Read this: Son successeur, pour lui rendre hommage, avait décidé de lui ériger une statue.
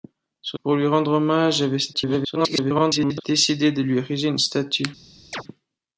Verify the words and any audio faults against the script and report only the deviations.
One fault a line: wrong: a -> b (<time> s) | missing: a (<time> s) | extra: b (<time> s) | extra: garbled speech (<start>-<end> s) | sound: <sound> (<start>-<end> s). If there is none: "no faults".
missing: successeur (0.6 s)
extra: garbled speech (1.9-3.2 s)
sound: chirp (5.3-5.4 s)